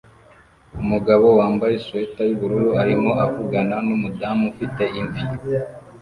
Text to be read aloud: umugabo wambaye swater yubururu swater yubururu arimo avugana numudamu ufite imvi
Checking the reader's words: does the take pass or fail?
fail